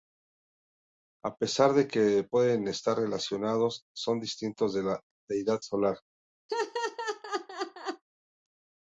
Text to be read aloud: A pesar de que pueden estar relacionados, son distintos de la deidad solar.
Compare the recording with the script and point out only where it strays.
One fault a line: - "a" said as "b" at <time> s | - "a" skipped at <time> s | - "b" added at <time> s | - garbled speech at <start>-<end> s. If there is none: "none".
none